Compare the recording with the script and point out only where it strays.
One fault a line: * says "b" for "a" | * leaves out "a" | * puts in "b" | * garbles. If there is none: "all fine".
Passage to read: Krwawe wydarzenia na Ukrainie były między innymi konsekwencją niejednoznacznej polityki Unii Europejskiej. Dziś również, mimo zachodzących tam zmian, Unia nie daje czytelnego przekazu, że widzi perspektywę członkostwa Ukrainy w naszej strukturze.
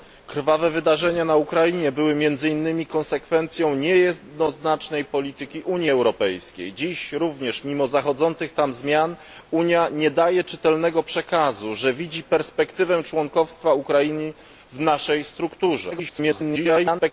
* garbles